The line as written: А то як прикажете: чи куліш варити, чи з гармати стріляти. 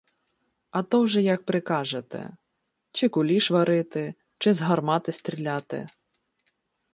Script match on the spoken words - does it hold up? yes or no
no